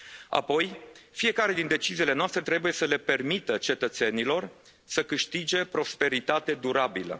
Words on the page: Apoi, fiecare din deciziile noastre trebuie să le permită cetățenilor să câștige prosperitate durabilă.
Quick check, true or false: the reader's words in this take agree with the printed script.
true